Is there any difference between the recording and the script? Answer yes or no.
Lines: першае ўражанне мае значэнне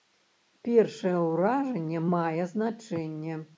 no